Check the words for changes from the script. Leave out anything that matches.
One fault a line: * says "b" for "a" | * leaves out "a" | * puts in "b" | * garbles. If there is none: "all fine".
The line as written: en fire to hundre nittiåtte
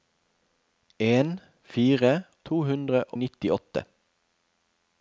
all fine